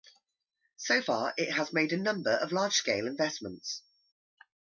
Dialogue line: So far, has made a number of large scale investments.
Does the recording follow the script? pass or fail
fail